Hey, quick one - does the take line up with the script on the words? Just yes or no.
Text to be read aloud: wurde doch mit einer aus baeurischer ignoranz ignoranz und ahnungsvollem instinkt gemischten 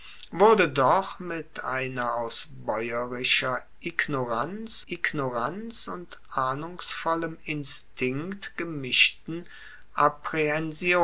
yes